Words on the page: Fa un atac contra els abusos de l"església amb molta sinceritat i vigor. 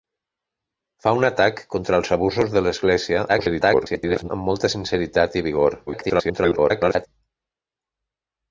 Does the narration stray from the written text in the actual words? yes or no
yes